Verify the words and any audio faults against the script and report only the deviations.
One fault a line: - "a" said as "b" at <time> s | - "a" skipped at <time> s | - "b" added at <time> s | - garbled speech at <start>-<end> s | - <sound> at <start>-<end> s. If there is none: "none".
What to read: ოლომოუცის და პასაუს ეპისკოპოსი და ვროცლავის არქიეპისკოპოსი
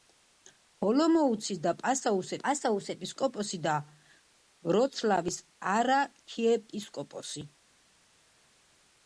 - "პასაუს" added at 2.4 s